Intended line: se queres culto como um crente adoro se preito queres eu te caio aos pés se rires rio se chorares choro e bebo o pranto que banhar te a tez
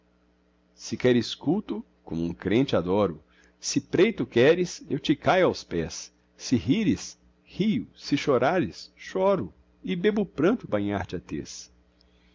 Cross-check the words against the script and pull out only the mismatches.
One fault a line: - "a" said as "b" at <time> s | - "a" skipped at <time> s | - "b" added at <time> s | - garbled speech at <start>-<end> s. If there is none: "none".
- "que" skipped at 10.7 s